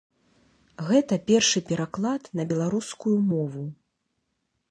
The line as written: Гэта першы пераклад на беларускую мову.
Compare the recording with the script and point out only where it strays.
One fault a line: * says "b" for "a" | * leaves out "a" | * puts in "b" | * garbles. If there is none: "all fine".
all fine